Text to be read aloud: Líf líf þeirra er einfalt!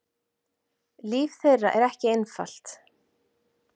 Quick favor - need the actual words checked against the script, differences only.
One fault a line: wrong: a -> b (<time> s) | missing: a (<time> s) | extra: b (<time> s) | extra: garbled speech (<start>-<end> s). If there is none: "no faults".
missing: líf (1.4 s)
extra: ekki (1.9 s)